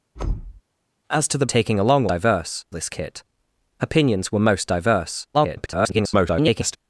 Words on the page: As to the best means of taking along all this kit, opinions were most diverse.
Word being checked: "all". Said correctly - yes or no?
no